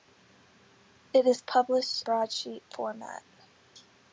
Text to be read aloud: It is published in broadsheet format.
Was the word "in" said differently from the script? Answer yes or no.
yes